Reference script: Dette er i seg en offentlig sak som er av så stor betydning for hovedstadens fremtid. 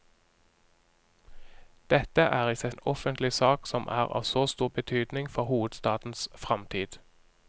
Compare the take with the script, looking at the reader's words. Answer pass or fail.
pass